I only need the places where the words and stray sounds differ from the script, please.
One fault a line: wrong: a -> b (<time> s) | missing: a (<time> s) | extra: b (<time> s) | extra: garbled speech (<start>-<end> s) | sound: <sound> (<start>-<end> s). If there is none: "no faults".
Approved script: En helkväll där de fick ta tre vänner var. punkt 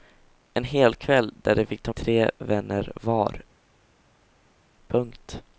no faults